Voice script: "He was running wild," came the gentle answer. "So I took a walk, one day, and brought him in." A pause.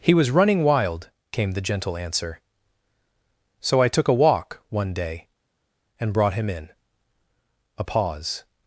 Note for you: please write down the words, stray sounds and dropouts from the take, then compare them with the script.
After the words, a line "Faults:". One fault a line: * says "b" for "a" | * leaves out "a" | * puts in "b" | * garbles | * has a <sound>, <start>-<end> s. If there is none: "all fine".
"He was running wild," came the gentle answer. "So I took a walk, one day, and brought him in." A pause.
Faults:
all fine